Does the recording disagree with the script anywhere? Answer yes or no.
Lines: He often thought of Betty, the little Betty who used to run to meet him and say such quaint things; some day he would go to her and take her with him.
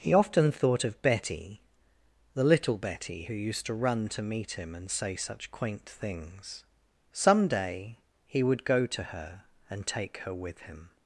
no